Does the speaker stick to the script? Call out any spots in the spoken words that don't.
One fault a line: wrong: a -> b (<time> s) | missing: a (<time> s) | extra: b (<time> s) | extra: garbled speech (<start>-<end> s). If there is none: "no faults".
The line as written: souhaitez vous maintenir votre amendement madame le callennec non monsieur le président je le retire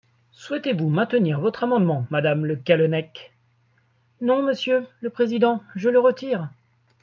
no faults